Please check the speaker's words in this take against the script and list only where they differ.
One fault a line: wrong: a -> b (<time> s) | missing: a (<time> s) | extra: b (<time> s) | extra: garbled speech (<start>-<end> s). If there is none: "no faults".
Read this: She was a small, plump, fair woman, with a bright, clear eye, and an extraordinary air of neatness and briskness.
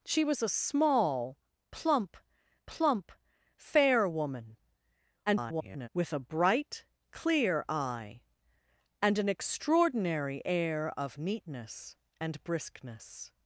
extra: plump (2.7 s)
extra: garbled speech (5.3-5.9 s)